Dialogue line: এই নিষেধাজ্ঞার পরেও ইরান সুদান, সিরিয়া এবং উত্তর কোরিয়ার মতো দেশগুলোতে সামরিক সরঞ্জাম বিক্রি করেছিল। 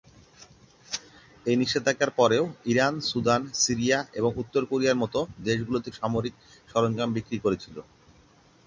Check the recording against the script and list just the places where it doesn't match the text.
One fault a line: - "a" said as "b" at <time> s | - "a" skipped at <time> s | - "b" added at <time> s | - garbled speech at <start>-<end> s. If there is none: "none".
none